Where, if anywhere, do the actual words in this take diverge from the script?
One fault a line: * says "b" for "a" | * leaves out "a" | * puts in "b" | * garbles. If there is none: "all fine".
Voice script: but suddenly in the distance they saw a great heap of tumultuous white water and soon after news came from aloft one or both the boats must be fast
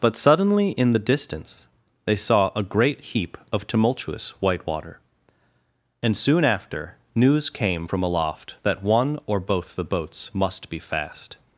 * puts in "that"